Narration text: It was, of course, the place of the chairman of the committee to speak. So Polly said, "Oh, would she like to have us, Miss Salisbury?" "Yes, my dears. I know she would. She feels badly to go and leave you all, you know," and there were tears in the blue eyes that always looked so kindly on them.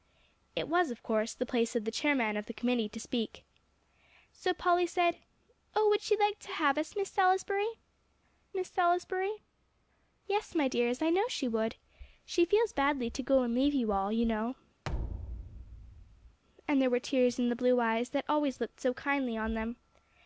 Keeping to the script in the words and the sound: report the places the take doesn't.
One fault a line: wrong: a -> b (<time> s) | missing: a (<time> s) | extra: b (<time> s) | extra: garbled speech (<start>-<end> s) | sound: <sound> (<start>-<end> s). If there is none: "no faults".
extra: Miss Salisbury (8.5 s)
sound: thud (14.8-16.4 s)